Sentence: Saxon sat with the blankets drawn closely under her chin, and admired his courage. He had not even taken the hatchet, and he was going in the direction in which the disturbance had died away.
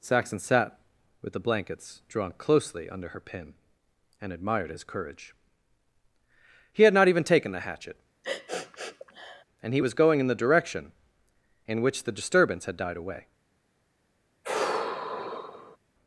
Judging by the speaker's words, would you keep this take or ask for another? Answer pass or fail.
fail